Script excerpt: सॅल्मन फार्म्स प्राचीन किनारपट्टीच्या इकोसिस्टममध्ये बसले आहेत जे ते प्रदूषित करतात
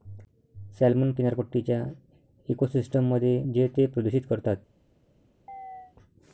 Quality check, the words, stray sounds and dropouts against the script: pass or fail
fail